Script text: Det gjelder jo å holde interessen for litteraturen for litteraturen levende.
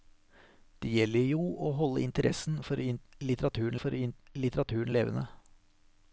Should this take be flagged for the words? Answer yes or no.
no